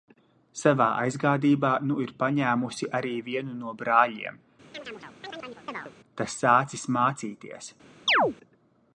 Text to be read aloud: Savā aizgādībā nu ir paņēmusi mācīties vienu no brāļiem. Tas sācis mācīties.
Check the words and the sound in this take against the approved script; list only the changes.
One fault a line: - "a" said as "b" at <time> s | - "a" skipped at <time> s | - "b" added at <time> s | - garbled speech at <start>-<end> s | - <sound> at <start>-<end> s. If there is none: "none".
- "mācīties" said as "arī" at 3.0 s
- chirp at 4.7-5.9 s
- chirp at 8.1-8.3 s